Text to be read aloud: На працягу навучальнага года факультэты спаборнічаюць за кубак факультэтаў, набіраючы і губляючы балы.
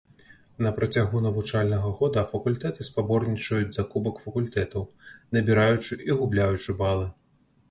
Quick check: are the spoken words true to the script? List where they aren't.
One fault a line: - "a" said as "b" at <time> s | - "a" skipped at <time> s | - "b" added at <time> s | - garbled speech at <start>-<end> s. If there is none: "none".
none